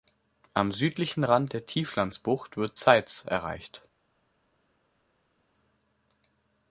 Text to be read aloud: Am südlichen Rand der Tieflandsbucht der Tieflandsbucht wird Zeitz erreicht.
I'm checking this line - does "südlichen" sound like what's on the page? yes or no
yes